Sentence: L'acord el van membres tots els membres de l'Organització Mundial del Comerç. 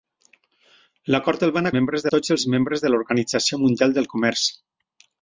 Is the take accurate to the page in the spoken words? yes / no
yes